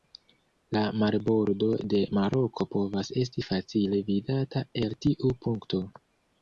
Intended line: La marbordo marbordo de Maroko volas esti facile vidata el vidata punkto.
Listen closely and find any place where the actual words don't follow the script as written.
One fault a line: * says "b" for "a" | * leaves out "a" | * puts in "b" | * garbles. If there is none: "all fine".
* leaves out "marbordo"
* says "povas" for "volas"
* says "tiu" for "vidata"